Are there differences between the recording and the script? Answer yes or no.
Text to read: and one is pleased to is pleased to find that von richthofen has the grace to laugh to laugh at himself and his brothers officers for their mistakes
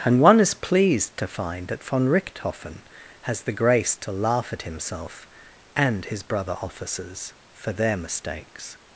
yes